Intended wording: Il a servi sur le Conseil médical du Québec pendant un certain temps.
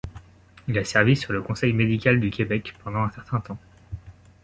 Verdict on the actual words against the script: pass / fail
pass